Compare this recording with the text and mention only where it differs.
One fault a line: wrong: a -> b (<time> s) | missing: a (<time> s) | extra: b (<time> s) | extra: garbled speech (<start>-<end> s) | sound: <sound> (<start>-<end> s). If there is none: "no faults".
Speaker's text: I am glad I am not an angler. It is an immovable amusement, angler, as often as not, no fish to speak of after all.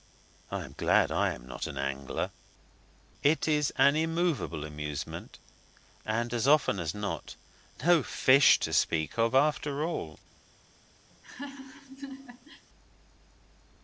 wrong: angler -> and (6.0 s)
sound: laugh (11.1-12.7 s)